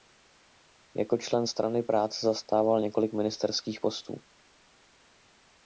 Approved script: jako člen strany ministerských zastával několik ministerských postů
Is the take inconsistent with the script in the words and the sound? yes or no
yes